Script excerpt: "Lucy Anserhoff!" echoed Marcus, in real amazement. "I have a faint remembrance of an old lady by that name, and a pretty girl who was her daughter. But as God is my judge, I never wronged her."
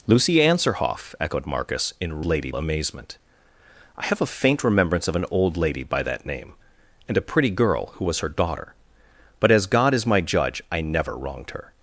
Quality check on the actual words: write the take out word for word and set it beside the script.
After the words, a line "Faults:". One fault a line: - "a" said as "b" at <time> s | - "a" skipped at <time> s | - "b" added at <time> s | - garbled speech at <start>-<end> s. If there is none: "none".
"Lucy Anserhoff!" echoed Marcus, in lady amazement. "I have a faint remembrance of an old lady by that name, and a pretty girl who was her daughter. But as God is my judge, I never wronged her."
Faults:
- "real" said as "lady" at 2.3 s